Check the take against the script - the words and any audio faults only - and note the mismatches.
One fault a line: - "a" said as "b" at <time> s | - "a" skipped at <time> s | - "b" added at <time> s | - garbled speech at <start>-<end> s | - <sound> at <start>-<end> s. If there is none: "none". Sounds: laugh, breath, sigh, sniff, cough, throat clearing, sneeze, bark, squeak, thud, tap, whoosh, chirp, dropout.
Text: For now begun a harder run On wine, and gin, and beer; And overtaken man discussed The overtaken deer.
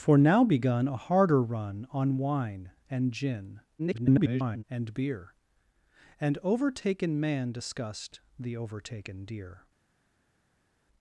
- garbled speech at 3.8-4.6 s